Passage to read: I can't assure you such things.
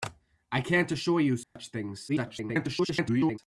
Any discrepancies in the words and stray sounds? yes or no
yes